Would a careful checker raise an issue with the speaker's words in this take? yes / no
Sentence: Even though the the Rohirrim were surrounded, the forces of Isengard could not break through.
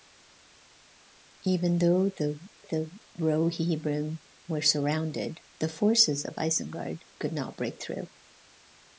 no